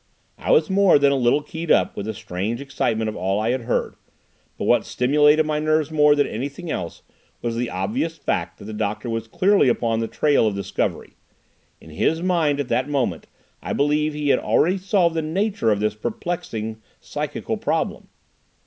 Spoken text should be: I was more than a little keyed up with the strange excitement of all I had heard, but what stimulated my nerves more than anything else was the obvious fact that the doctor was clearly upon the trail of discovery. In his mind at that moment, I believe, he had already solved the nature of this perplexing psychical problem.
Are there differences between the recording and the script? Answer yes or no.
no